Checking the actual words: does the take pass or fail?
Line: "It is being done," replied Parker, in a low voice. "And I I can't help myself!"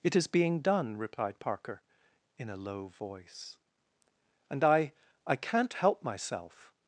pass